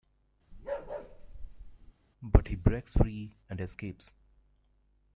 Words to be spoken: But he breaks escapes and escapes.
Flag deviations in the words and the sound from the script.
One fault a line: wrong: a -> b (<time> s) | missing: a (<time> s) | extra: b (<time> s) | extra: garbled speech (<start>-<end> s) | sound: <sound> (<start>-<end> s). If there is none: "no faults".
sound: bark (0.5-1.9 s)
wrong: escapes -> free (2.9 s)